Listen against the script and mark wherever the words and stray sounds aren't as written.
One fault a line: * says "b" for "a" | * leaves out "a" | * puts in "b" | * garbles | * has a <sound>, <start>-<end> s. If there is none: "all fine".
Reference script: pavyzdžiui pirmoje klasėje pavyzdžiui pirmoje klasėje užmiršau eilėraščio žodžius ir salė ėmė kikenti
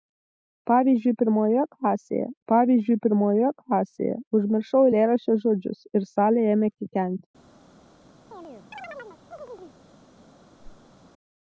* has a chirp, 8.3-9.8 s
* has a whoosh, 10.6-10.9 s